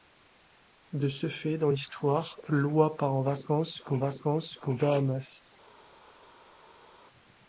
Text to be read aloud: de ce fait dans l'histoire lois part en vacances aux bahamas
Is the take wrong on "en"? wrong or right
right